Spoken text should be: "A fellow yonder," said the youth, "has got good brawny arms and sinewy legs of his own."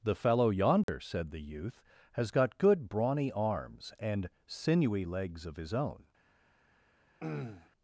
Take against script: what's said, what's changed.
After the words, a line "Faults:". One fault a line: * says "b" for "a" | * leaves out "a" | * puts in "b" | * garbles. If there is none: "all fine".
"The fellow yonder," said the youth, "has got good brawny arms and sinewy legs of his own."
Faults:
* says "The" for "A"